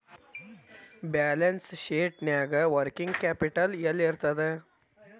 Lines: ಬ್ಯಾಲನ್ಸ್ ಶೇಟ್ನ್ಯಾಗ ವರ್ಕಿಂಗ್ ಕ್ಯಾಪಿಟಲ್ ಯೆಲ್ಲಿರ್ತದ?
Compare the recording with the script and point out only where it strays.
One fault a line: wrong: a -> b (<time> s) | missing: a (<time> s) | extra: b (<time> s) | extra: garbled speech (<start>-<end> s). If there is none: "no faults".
no faults